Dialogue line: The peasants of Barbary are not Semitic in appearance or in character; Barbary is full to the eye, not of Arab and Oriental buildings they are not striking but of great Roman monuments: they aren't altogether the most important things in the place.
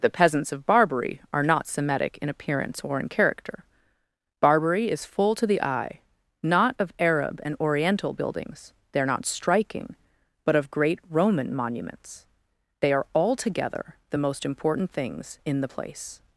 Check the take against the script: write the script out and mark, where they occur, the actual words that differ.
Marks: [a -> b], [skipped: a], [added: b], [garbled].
The peasants of Barbary are not Semitic in appearance or in character; Barbary is full to the eye, not of Arab and Oriental buildings they are not striking but of great Roman monuments: they [aren't -> are] altogether the most important things in the place.